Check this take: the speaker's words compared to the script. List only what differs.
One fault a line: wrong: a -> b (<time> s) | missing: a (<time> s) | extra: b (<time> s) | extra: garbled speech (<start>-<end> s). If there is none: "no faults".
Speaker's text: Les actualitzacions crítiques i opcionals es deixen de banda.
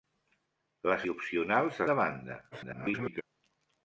missing: actualitzacions crítiques (1.0 s)
missing: es deixen (1.8 s)
extra: garbled speech (2.5-3.2 s)